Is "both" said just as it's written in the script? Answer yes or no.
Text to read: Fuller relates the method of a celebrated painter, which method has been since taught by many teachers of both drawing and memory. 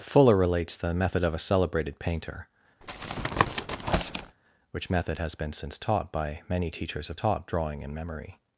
no